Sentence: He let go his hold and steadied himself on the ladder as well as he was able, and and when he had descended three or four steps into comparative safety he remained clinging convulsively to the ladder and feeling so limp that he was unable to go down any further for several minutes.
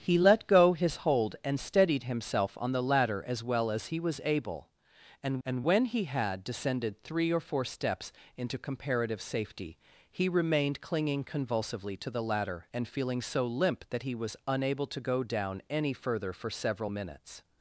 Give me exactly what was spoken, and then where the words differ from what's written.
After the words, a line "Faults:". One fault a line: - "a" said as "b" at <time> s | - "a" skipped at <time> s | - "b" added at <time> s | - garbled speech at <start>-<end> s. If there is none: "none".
He let go his hold and steadied himself on the ladder as well as he was able, and and when he had descended three or four steps into comparative safety he remained clinging convulsively to the ladder and feeling so limp that he was unable to go down any further for several minutes.
Faults:
none